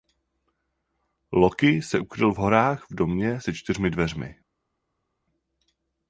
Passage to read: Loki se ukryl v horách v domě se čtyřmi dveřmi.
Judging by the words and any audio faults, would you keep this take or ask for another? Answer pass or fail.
pass